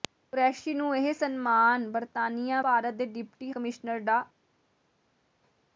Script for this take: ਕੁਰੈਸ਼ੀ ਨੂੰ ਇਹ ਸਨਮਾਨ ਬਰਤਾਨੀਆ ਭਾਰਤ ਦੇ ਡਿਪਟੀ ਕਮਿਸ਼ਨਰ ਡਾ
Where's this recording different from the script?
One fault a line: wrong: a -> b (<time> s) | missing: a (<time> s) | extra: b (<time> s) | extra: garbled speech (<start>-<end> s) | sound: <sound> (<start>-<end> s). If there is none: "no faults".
no faults